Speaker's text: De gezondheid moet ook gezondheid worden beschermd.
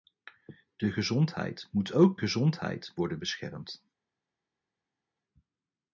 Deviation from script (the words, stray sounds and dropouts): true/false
false